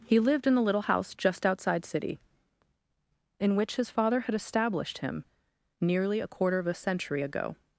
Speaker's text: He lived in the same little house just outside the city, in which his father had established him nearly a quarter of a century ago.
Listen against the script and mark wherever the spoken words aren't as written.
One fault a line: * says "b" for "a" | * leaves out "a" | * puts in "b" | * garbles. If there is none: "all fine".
* leaves out "same"
* leaves out "the"